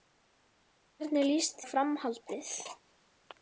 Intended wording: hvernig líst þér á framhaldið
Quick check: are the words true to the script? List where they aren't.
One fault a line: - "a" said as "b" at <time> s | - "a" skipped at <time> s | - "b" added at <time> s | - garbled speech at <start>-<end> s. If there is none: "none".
- "þér" skipped at 1.6 s